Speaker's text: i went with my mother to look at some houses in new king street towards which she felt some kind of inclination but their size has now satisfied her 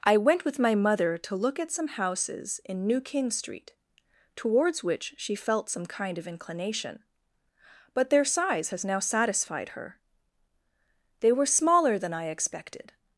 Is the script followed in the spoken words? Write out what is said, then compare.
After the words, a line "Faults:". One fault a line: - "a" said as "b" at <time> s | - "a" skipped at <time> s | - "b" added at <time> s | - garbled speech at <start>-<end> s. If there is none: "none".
i went with my mother to look at some houses in new king street towards which she felt some kind of inclination but their size has now satisfied her they were smaller than i expected
Faults:
- "they were smaller than i expected" added at 11.2 s